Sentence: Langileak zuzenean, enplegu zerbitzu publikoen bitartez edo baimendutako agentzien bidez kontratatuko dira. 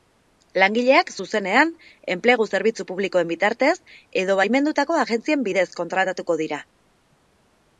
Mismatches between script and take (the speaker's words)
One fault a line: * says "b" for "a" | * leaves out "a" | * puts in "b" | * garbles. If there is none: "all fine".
all fine